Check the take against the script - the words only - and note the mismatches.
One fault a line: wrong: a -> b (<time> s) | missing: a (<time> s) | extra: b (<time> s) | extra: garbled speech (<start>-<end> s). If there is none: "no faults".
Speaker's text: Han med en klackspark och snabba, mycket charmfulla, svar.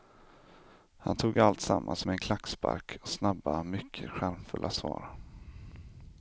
extra: tog alltsammans (1.2 s)